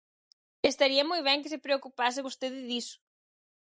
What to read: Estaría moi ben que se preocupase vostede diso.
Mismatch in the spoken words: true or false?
false